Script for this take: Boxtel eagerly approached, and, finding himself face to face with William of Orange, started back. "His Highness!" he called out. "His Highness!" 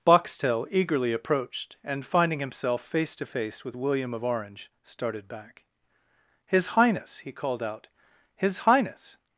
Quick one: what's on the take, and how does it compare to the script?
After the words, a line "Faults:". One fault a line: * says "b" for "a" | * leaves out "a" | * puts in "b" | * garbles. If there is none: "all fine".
Boxtel eagerly approached, and, finding himself face to face with William of Orange, started back. "His Highness!" he called out. "His Highness!"
Faults:
all fine